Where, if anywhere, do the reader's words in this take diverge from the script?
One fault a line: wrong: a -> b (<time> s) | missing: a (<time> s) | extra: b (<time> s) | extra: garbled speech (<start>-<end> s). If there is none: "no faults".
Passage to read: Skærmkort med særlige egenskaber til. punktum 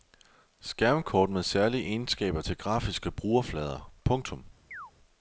extra: grafiske brugerflader (2.6 s)